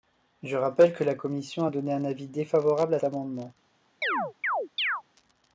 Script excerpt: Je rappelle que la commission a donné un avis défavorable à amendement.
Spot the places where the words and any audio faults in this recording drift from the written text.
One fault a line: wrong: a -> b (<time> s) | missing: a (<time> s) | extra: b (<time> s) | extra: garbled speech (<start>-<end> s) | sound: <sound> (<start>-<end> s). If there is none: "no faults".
sound: chirp (4.0-5.0 s)